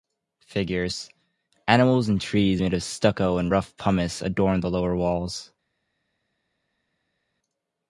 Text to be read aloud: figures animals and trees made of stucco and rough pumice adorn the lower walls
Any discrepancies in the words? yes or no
no